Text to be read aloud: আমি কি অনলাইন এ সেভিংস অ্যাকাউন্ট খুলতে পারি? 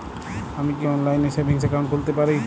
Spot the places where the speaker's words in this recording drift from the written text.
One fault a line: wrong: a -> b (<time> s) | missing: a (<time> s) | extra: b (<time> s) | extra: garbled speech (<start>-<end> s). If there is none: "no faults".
no faults